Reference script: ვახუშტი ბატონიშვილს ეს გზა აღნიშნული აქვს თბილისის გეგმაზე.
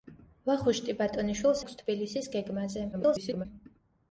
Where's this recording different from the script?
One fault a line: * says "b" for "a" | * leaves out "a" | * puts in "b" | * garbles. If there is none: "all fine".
* leaves out "ეს გზა აღნიშნული"
* garbles